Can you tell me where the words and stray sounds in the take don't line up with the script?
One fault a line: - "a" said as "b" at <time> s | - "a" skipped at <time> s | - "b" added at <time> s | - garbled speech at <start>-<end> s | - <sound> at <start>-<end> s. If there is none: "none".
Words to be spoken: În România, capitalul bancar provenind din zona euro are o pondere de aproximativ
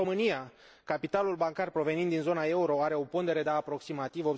none